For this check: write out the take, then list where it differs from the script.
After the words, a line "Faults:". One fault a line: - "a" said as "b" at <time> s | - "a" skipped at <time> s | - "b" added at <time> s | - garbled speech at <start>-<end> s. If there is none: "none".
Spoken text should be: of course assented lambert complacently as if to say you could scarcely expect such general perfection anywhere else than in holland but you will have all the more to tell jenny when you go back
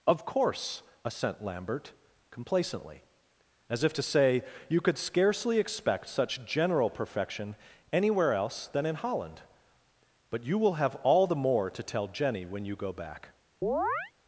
of course assent lambert complacently as if to say you could scarcely expect such general perfection anywhere else than in holland but you will have all the more to tell jenny when you go back
Faults:
- "assented" said as "assent" at 1.0 s